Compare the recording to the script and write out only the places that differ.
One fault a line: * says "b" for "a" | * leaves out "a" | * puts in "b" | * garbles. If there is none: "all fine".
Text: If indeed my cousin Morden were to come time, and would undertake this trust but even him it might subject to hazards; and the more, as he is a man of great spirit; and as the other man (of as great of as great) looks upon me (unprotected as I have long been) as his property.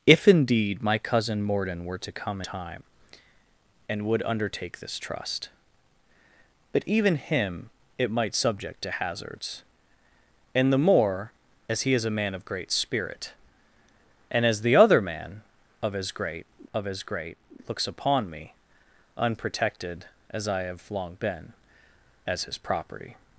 all fine